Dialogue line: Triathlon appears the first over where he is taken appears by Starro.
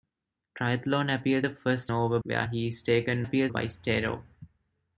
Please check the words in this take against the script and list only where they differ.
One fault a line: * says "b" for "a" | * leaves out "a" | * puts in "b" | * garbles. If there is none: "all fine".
all fine